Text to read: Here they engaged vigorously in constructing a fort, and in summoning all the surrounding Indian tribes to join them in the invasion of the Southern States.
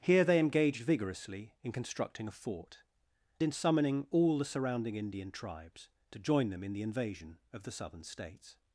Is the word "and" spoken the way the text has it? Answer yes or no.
no